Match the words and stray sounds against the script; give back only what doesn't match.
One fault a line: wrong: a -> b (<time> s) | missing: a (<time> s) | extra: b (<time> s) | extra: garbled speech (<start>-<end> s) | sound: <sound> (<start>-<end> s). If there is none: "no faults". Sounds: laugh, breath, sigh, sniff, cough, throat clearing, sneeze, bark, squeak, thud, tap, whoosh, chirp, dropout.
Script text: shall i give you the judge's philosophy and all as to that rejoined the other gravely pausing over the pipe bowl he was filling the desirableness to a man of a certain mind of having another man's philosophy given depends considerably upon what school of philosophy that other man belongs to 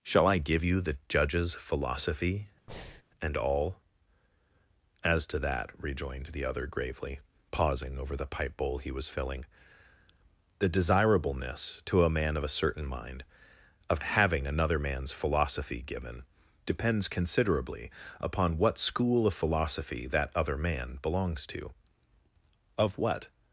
sound: breath (2.7-3.0 s)
extra: of what (22.8 s)